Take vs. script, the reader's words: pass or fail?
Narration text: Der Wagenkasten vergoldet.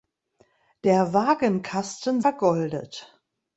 pass